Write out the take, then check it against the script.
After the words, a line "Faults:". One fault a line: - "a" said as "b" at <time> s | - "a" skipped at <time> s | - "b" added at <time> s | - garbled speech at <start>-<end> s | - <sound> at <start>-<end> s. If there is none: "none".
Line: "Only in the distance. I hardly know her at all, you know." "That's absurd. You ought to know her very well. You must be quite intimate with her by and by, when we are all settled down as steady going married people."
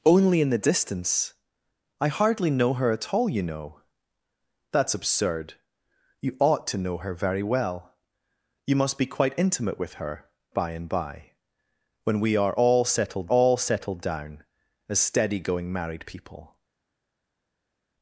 "Only in the distance. I hardly know her at all, you know." "That's absurd. You ought to know her very well. You must be quite intimate with her by and by, when we are all settled all settled down as steady going married people."
Faults:
- "all settled" added at 13.3 s